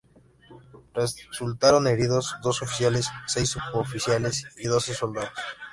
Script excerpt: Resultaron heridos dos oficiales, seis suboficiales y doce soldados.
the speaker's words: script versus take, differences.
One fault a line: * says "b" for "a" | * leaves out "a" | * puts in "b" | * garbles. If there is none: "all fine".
all fine